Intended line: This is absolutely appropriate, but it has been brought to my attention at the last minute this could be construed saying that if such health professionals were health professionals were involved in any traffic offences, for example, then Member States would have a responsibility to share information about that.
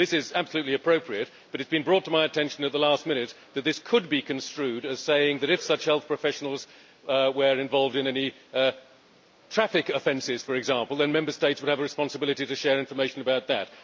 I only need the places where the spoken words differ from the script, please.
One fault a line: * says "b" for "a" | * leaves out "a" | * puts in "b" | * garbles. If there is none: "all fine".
* puts in "that"
* puts in "as"
* leaves out "health professionals were"